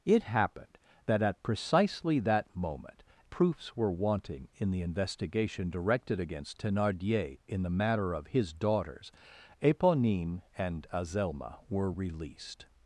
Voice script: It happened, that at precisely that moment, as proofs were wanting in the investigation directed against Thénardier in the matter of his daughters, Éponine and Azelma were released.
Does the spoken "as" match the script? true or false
false